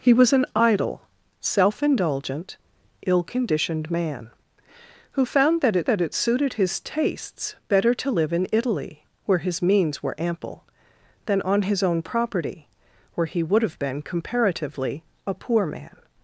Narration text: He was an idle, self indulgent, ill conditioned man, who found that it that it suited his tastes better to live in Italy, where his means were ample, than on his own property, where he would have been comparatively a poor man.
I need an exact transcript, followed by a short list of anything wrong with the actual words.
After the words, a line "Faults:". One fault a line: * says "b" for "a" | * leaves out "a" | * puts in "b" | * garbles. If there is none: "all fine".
He was an idle, self indulgent, ill conditioned man, who found that it that it suited his tastes better to live in Italy, where his means were ample, than on his own property, where he would have been comparatively a poor man.
Faults:
all fine